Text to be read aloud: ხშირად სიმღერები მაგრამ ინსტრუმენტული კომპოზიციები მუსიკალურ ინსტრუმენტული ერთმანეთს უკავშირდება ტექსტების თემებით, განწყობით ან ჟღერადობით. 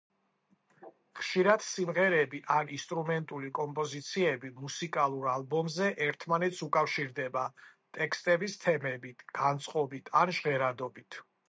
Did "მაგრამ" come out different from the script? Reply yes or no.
yes